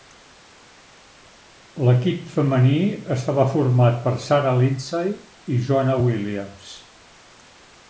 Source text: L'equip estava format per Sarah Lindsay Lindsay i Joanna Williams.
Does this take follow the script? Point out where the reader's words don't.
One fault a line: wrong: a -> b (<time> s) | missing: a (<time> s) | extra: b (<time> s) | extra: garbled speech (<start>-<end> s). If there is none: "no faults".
extra: femení (2.4 s)
missing: Lindsay (5.1 s)